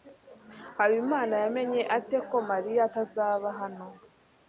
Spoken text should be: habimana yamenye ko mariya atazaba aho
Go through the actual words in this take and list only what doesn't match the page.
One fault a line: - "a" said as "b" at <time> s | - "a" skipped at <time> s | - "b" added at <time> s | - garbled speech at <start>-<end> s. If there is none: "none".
- "ate" added at 2.0 s
- "aho" said as "hano" at 3.6 s